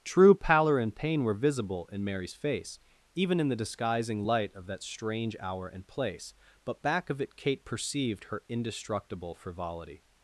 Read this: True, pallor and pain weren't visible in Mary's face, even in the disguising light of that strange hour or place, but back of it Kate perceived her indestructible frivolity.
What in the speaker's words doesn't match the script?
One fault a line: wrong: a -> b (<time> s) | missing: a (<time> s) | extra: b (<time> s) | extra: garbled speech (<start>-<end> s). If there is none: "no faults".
wrong: weren't -> were (1.2 s)
wrong: or -> and (5.7 s)